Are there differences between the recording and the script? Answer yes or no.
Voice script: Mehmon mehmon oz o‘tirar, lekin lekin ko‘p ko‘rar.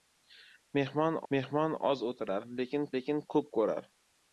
no